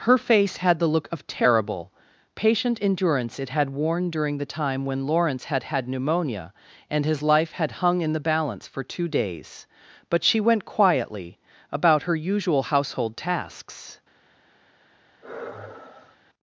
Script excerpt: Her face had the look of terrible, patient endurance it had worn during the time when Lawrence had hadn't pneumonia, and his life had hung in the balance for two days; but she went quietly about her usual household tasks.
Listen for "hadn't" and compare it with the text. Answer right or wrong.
wrong